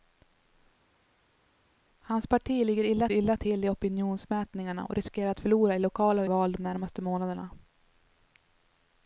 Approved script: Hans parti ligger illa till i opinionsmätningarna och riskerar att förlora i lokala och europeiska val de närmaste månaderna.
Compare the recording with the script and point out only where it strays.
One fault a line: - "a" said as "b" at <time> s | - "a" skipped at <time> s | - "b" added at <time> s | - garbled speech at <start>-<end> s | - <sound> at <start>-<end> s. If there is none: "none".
- "illa" added at 3.1 s
- "europeiska" skipped at 6.3 s